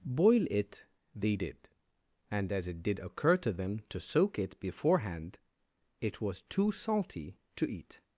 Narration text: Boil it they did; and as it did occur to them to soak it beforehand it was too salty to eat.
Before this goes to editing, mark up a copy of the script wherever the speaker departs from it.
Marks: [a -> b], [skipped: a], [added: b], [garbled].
Boil it they did; and as it did occur to them to soak it beforehand it was too salty to eat.